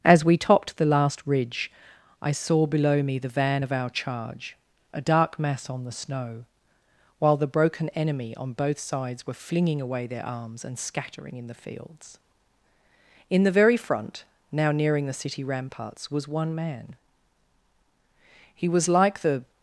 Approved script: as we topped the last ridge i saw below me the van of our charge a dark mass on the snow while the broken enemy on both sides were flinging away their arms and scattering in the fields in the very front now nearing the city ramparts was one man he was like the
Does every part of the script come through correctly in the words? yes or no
yes